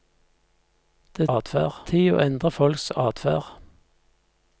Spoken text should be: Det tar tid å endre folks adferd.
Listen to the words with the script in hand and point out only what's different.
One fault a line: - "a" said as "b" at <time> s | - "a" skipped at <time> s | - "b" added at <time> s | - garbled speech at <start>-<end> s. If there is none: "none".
- "tar" said as "adferd" at 1.3 s